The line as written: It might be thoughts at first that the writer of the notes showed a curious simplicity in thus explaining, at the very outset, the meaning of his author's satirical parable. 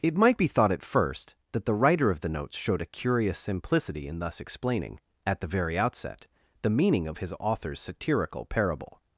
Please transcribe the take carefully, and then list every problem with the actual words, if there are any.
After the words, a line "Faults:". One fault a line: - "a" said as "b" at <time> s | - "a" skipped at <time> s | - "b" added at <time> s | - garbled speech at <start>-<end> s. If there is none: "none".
It might be thought at first that the writer of the notes showed a curious simplicity in thus explaining, at the very outset, the meaning of his author's satirical parable.
Faults:
- "thoughts" said as "thought" at 0.5 s